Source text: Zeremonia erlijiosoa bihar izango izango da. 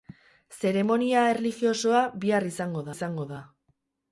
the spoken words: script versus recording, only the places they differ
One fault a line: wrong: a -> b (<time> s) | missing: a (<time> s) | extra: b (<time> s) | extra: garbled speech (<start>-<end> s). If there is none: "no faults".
no faults